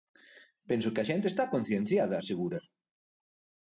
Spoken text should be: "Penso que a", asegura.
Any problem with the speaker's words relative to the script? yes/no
yes